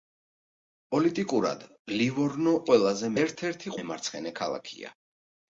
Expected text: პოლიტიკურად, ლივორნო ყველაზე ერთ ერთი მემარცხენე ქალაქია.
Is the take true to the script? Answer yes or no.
yes